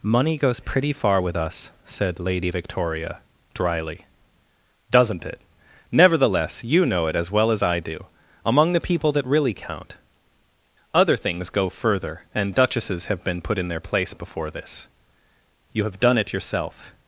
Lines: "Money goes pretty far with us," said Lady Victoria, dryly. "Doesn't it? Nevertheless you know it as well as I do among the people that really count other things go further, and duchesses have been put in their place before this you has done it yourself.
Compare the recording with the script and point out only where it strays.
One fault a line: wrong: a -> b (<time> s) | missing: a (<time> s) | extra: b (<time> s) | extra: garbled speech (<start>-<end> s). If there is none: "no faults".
wrong: has -> have (15.8 s)